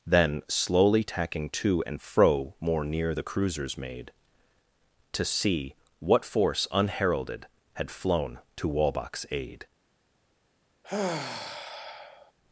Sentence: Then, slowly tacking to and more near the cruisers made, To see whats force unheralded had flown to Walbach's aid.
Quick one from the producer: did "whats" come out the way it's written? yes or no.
no